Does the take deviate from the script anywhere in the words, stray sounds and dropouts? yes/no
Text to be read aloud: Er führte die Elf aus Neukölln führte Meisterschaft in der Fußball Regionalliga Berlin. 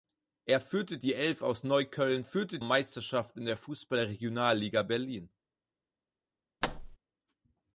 yes